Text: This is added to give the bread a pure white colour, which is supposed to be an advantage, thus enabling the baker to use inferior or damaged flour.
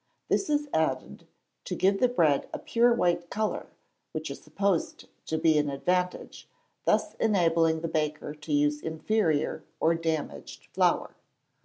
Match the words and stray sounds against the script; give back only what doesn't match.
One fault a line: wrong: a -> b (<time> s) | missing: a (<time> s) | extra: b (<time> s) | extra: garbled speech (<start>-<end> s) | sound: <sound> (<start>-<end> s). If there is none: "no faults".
no faults